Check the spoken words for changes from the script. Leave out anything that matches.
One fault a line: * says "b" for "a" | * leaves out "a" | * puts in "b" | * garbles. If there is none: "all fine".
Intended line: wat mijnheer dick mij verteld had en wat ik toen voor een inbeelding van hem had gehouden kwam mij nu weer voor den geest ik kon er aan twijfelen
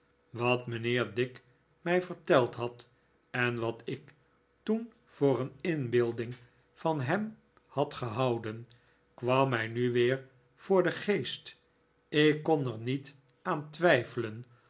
* puts in "niet"